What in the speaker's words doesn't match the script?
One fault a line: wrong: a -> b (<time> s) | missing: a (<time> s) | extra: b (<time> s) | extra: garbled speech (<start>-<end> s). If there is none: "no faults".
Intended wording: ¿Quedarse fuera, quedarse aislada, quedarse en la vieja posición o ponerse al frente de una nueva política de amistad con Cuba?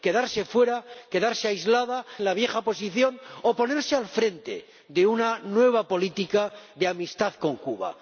missing: quedarse (2.0 s)